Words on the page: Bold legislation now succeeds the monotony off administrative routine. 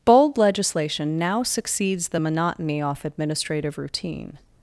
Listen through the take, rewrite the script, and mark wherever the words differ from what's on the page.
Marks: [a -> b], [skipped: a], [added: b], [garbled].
Bold legislation now succeeds the monotony off administrative routine.